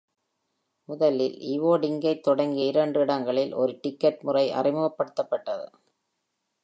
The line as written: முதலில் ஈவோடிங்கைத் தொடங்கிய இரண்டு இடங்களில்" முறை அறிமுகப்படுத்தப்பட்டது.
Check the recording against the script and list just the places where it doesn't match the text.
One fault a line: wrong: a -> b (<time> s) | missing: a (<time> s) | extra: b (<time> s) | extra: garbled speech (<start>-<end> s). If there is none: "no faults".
extra: ஒரு டிக்கெட் (3.5 s)